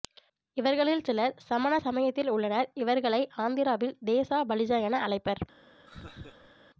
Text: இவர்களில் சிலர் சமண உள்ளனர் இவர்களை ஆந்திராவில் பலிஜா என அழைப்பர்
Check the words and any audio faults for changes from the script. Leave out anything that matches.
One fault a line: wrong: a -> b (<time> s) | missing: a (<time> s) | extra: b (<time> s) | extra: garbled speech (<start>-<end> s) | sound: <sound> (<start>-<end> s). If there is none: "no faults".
extra: சமயத்தில் (1.8 s)
extra: தேசா (4.1 s)
sound: laugh (5.9-6.5 s)